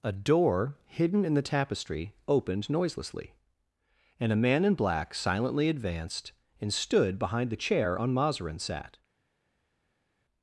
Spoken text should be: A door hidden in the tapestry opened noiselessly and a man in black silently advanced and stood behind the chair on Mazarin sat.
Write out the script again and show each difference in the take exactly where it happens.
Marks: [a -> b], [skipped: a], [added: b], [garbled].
A door hidden in the tapestry opened noiselessly and a man in black silently advanced and stood behind the chair on Mazarin sat.